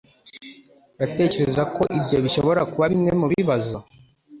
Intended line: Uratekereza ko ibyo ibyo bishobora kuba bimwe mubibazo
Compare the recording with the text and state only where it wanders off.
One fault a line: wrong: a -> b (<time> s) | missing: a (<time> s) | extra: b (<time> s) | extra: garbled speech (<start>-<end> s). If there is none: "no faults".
missing: ibyo (2.2 s)